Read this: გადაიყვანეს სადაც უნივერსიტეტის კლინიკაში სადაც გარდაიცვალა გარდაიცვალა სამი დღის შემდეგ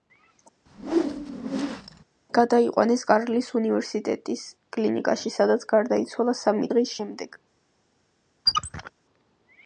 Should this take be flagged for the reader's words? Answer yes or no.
yes